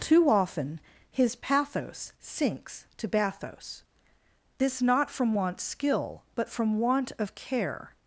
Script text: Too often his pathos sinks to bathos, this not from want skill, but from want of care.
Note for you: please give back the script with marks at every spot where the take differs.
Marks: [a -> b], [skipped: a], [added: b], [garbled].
Too often his pathos sinks to bathos, this not from want skill, but from want of care.